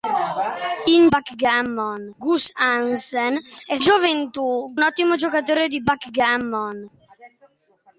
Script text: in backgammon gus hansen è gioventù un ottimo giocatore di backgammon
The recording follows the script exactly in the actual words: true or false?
true